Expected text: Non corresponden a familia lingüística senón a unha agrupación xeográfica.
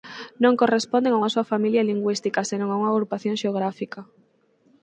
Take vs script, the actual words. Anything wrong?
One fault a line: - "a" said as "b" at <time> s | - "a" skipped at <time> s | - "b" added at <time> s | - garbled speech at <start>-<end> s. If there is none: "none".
- "unha soa" added at 1.2 s